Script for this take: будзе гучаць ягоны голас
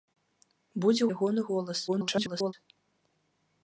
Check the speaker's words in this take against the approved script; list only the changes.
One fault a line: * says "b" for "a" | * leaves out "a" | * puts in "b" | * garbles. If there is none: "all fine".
* leaves out "гучаць"
* garbles